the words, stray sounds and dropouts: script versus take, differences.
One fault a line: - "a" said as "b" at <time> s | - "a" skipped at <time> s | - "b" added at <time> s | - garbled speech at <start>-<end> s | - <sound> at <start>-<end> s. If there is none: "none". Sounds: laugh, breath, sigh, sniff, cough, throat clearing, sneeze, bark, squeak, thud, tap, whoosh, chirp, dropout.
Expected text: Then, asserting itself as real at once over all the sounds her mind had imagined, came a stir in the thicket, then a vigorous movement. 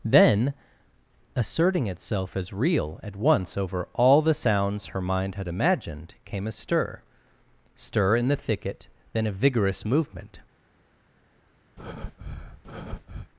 - "stir" added at 7.7 s
- breath at 11.8-13.3 s